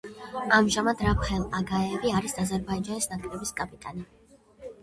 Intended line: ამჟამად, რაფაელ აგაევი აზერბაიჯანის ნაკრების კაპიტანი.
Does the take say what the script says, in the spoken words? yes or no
no